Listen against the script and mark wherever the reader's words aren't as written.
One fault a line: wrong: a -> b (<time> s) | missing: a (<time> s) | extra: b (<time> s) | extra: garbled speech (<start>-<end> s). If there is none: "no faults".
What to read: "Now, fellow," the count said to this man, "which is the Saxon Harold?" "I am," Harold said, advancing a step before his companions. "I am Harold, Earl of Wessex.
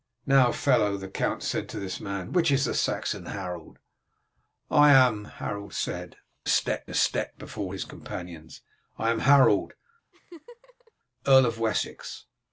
wrong: advancing -> step (6.5 s)